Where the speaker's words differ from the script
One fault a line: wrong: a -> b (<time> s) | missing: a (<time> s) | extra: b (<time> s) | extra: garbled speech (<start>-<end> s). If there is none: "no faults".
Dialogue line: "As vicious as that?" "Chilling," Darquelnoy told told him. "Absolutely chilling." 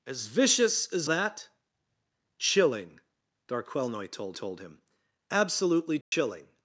no faults